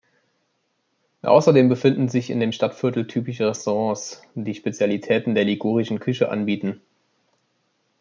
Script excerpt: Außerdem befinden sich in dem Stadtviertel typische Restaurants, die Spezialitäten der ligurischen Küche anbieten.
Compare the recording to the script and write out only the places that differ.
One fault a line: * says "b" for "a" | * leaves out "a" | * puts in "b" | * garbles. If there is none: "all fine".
all fine